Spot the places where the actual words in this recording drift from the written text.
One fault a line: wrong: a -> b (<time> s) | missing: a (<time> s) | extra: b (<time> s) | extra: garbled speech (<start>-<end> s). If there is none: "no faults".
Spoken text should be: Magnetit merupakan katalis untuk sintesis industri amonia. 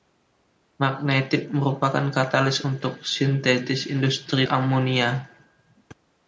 no faults